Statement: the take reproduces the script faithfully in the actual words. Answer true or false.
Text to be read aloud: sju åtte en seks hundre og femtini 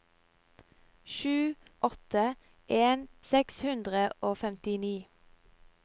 true